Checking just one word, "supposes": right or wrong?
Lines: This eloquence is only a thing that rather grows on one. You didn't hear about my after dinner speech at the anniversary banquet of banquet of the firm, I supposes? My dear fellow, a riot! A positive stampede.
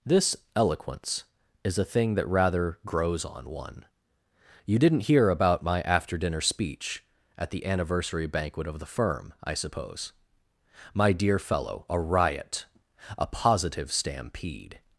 wrong